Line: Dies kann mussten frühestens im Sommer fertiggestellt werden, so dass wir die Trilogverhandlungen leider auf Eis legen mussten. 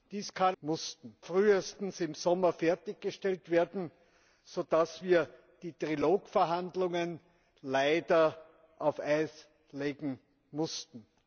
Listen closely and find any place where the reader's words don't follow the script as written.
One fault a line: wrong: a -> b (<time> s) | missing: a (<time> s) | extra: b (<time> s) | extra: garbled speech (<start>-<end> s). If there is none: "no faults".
no faults